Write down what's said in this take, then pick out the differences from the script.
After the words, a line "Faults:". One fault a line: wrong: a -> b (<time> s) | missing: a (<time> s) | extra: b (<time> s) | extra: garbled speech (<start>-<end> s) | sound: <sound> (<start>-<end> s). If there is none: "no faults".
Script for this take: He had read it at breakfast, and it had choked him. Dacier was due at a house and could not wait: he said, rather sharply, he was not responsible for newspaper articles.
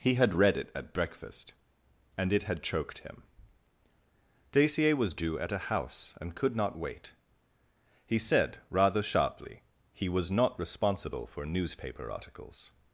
He had read it at breakfast, and it had choked him. Dacier was due at a house and could not wait: he said, rather sharply, he was not responsible for newspaper articles.
Faults:
no faults